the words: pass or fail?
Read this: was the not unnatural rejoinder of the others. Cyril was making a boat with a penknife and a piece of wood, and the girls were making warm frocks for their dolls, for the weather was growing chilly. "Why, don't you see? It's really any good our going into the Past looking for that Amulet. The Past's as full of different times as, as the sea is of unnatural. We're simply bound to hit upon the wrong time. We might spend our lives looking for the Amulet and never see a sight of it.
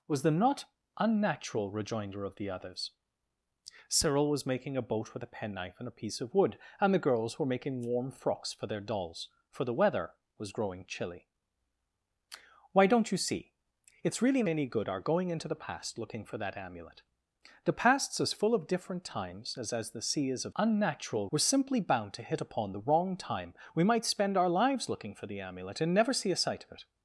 pass